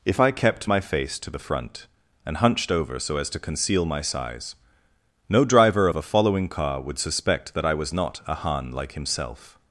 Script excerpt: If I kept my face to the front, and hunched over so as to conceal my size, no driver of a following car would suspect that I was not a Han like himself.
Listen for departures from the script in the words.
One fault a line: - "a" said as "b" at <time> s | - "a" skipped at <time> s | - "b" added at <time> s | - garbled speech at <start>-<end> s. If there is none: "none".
none